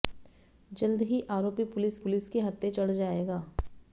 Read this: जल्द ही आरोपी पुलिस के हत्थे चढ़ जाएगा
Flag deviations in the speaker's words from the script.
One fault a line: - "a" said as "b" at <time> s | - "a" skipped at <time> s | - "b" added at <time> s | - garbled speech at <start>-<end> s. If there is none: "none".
- "पुलिस" added at 2.0 s